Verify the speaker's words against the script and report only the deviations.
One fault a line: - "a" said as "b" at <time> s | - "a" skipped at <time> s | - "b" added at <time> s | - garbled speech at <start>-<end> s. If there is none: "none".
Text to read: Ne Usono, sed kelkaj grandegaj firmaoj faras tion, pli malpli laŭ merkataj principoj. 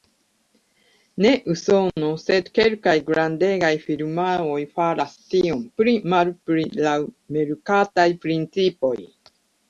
none